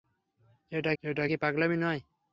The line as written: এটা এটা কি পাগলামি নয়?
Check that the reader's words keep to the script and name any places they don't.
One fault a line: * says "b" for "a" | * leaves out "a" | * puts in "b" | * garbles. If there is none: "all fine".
all fine